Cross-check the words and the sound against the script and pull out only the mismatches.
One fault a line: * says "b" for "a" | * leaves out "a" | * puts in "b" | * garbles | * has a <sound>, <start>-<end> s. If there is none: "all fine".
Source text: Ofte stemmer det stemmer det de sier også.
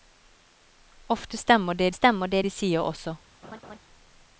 * has a laugh, 3.4-3.8 s